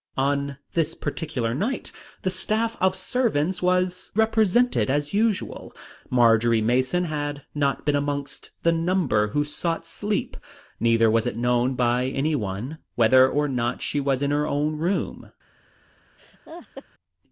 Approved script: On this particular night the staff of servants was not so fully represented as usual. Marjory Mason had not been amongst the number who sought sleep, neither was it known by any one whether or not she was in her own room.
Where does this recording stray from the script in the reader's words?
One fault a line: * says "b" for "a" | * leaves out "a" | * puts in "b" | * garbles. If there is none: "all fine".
* leaves out "not so fully"